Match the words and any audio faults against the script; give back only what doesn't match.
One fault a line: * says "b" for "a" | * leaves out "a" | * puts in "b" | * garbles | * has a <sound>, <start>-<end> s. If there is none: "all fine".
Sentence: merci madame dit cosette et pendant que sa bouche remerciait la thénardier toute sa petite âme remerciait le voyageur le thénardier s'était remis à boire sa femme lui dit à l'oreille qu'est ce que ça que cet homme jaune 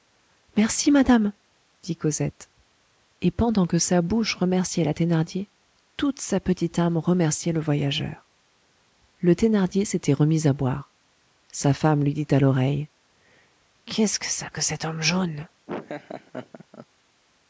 * has a laugh, 15.7-16.9 s